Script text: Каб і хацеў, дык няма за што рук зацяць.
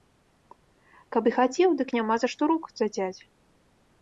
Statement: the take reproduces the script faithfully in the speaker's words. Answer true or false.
true